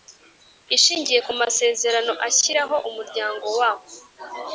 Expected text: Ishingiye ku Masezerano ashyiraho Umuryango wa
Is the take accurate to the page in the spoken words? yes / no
yes